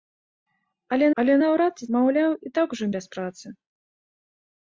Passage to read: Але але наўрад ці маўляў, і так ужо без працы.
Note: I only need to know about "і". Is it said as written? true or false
true